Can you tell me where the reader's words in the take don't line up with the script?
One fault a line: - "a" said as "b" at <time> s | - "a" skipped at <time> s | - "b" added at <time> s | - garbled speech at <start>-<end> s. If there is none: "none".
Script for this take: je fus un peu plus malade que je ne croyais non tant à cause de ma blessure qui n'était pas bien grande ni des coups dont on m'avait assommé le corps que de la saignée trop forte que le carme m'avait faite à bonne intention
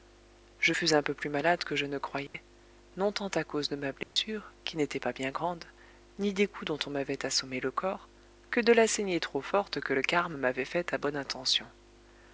none